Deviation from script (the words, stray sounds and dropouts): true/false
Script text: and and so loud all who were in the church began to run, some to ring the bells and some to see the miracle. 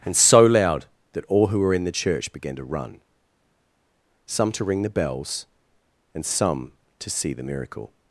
true